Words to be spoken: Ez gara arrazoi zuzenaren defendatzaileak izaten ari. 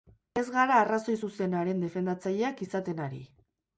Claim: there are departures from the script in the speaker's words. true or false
false